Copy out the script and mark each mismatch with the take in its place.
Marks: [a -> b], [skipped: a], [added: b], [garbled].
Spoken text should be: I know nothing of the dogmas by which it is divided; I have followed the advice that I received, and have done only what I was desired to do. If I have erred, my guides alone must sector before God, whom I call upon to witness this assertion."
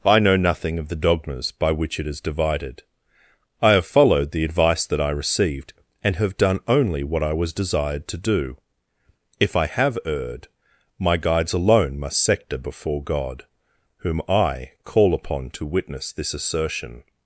I know nothing of the dogmas by which it is divided; I have followed the advice that I received, and have done only what I was desired to do. If I have erred, my guides alone must sector before God, whom I call upon to witness this assertion."